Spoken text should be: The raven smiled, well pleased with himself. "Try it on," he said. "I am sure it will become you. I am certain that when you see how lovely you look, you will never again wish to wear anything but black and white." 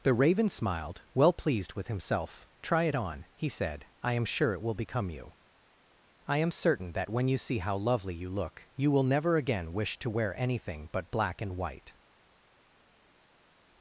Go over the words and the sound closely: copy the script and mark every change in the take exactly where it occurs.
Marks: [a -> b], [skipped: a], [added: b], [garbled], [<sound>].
The raven smiled, well pleased with himself. "Try it on," he said. "I am sure it will become you. I am certain that when you see how lovely you look, you will never again wish to wear anything but black and white."